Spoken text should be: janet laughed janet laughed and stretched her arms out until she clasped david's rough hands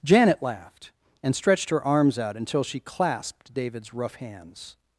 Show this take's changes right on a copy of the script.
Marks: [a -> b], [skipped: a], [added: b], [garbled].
janet laughed [skipped: janet laughed] and stretched her arms out until she clasped david's rough hands